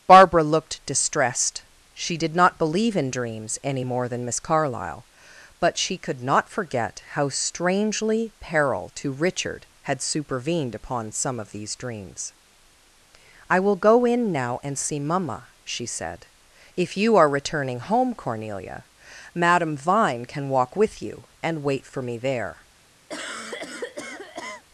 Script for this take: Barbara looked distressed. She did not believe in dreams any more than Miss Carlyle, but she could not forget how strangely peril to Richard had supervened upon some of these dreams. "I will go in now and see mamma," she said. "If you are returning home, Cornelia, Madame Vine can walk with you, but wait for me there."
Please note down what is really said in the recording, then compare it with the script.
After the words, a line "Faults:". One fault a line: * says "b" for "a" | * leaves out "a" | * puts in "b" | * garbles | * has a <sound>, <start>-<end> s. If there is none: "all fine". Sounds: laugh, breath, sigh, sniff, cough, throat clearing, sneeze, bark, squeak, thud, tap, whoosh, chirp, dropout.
Barbara looked distressed. She did not believe in dreams any more than Miss Carlyle, but she could not forget how strangely peril to Richard had supervened upon some of these dreams. "I will go in now and see mamma," she said. "If you are returning home, Cornelia, Madame Vine can walk with you, and wait for me there."
Faults:
* says "and" for "but"
* has a cough, 23.1-24.6 s